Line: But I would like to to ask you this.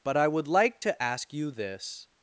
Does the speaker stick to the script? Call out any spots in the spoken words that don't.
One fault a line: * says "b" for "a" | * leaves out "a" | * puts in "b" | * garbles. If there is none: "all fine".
* leaves out "to"